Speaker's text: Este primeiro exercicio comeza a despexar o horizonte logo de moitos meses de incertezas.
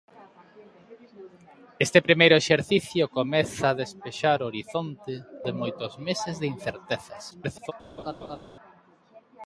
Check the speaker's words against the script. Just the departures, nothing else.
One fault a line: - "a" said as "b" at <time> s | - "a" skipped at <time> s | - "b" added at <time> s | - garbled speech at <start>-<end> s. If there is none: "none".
- "logo" skipped at 5.1 s
- garbled speech at 7.3-7.7 s